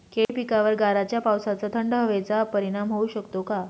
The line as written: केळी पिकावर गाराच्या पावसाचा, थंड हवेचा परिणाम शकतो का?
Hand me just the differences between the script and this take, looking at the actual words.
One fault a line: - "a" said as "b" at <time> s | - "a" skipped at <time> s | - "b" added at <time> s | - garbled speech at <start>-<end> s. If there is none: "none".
- "होऊ" added at 2.9 s